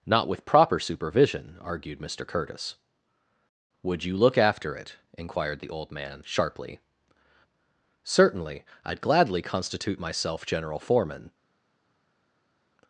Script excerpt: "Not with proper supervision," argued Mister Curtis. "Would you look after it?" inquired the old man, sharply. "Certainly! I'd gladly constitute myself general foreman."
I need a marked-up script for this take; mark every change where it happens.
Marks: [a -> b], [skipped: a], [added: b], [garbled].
"Not with proper supervision," argued Mister Curtis. "Would you look after it?" inquired the old man, sharply. "Certainly! I'd gladly constitute myself general foreman."